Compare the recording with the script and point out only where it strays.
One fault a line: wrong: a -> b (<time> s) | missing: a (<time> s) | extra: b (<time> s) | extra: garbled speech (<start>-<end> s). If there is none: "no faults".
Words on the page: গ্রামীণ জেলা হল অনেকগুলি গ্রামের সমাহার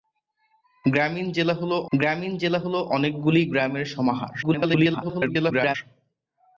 extra: গ্রামীণ জেলা হল (1.9 s)
extra: garbled speech (4.4-5.8 s)